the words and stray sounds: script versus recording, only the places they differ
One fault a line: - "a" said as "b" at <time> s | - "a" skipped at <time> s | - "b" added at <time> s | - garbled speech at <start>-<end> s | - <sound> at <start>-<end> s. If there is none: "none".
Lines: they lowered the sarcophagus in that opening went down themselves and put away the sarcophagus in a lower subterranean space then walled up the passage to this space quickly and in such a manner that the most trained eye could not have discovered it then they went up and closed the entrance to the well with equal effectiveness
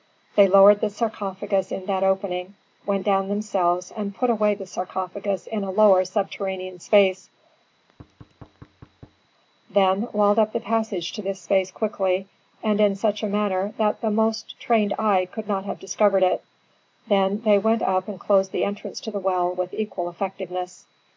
- thud at 7.7-9.3 s